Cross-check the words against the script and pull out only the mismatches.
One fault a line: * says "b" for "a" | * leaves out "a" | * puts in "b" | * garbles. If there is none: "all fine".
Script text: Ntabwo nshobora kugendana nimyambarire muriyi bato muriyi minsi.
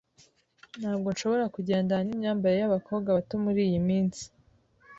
* says "yabakobwa" for "muriyi"